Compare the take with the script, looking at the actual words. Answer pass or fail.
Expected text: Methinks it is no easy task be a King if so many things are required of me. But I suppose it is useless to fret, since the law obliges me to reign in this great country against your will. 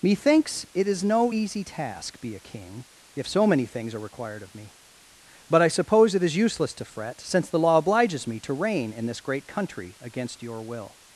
pass